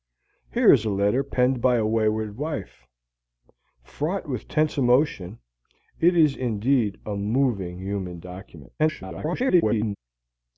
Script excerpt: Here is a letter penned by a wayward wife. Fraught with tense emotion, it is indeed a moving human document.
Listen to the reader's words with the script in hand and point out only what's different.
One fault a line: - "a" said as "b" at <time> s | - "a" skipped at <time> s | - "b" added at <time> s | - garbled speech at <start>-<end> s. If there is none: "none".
- garbled speech at 8.8-10.0 s